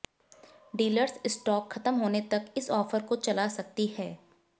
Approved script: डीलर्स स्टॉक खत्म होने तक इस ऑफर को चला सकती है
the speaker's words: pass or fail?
pass